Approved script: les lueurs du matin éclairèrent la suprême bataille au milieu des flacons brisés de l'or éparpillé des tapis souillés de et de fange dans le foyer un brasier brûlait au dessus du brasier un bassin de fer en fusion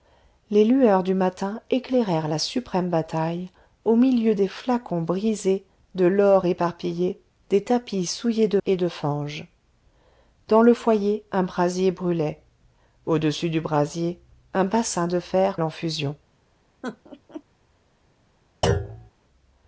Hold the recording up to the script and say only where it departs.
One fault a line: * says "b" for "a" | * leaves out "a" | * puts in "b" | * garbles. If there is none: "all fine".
all fine